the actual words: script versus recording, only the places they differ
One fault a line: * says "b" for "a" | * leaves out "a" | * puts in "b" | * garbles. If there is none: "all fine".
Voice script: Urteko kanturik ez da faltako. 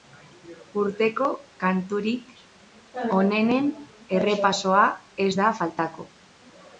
* puts in "onenen errepasoa"